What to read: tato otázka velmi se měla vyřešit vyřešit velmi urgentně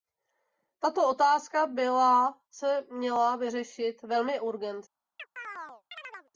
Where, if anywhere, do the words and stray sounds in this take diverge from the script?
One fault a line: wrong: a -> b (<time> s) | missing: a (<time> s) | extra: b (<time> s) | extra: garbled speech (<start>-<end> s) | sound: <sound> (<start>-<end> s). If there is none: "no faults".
wrong: velmi -> byla (1.7 s)
missing: vyřešit (4.0 s)
sound: chirp (5.2-6.3 s)